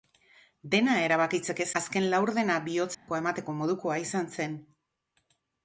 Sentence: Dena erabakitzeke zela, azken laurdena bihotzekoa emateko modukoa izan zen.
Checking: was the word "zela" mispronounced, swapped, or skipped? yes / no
yes